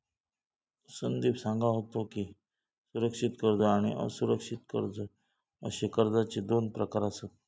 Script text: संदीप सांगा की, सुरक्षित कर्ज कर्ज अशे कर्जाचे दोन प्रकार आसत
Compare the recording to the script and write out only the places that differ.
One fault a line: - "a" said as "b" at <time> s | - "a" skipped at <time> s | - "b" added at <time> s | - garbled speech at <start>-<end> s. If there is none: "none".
- "होतो" added at 1.7 s
- "आणि असुरक्षित" added at 3.6 s